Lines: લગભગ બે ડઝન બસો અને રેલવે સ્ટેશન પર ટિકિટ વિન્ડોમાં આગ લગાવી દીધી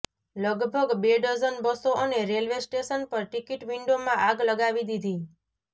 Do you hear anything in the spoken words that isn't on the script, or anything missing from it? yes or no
no